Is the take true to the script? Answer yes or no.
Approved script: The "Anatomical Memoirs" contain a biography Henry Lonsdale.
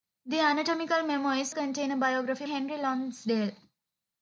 yes